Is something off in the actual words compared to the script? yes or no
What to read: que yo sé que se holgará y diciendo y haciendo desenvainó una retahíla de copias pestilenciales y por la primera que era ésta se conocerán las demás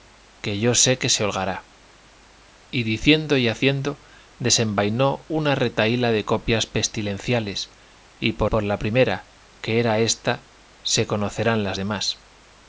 yes